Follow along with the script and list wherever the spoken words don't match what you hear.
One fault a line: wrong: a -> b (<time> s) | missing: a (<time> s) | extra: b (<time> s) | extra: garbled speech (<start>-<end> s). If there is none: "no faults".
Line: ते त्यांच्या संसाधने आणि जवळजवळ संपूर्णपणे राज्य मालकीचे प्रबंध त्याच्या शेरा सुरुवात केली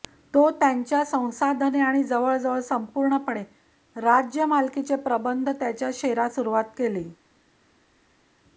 wrong: ते -> तो (0.3 s)